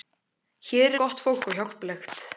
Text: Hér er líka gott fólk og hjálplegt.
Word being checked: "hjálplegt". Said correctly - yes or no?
yes